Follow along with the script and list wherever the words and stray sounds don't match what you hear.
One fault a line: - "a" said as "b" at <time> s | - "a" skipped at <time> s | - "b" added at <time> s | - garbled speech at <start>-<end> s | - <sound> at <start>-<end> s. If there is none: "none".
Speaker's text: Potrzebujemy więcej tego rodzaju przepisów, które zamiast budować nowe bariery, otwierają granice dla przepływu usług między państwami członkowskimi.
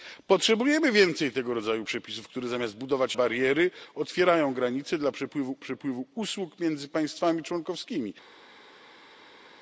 - "nowe" skipped at 3.2 s
- "przepływu" added at 5.6 s